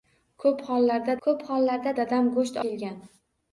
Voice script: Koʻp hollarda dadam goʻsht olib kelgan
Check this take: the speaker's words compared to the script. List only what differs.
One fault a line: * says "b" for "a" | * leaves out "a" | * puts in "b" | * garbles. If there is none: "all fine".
* puts in "koʻp hollarda"
* leaves out "olib"